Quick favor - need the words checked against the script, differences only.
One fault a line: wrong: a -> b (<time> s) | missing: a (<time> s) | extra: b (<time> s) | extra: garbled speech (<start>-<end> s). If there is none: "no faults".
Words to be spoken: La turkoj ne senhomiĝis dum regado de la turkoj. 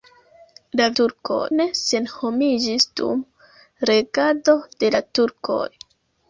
no faults